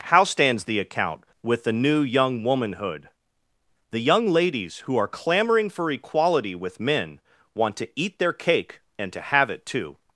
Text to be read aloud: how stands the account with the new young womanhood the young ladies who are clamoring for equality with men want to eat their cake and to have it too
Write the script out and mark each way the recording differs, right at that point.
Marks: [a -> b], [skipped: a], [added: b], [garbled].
how stands the account with the new young womanhood the young ladies who are clamoring for equality with men want to eat their cake and to have it too